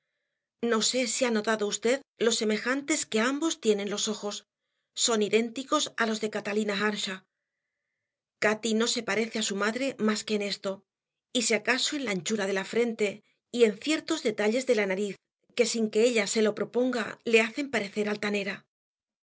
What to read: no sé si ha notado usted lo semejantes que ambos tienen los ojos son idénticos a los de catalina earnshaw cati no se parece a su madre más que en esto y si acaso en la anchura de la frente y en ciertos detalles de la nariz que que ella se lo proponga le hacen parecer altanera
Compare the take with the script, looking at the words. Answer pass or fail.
fail